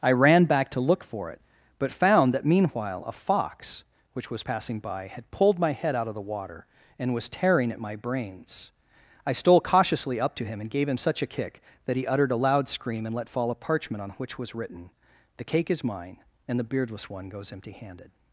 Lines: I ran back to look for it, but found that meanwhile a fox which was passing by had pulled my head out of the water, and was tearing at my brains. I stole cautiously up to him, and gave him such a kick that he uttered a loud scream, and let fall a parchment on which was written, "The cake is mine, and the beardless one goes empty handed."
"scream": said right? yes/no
yes